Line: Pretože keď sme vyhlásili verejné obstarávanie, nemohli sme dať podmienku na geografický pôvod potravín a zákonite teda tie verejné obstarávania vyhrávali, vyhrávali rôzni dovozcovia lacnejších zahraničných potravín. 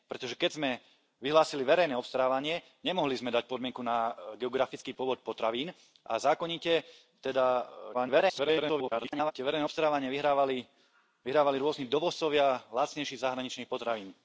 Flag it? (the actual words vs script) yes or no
yes